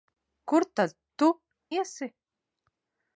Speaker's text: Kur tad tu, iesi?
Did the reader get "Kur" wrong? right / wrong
right